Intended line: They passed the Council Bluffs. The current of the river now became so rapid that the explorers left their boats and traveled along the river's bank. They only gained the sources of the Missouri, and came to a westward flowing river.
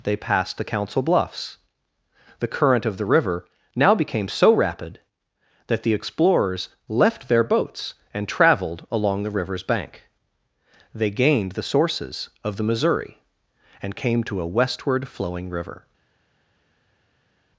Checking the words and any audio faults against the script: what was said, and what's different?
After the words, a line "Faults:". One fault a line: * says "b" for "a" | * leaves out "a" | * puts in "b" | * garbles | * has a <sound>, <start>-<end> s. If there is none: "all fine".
They passed the Council Bluffs. The current of the river now became so rapid that the explorers left their boats and traveled along the river's bank. They gained the sources of the Missouri, and came to a westward flowing river.
Faults:
* leaves out "only"